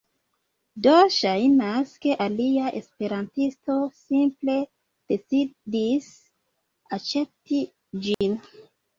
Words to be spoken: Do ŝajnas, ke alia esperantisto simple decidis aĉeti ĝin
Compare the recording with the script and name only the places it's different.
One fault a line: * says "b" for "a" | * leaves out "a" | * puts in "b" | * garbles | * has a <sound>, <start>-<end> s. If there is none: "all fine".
* has a dropout, 8.1-8.2 s